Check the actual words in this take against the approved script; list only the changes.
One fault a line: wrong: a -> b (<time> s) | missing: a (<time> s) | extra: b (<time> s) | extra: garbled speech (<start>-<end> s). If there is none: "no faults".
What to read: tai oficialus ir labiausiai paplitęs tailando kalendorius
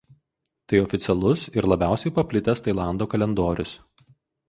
no faults